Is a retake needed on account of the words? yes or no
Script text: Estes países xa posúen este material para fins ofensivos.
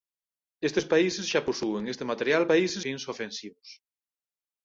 yes